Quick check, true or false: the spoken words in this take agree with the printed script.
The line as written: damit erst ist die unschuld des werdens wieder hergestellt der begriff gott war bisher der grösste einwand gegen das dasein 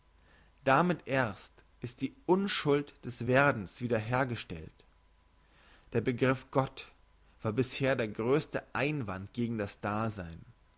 true